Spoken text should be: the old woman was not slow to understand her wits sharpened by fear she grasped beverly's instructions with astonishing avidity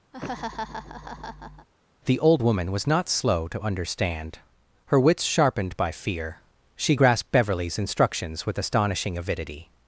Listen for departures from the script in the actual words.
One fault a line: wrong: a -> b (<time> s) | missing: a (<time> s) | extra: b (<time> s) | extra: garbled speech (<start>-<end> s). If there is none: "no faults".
no faults